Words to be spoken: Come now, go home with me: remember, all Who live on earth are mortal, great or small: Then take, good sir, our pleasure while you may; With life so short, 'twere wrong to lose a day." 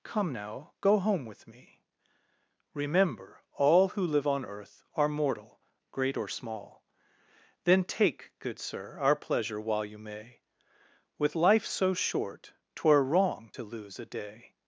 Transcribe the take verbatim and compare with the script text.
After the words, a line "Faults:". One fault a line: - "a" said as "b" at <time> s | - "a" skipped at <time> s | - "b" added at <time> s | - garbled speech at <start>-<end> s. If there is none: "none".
Come now, go home with me: remember, all Who live on earth are mortal, great or small: Then take, good sir, our pleasure while you may; With life so short, 'twere wrong to lose a day."
Faults:
none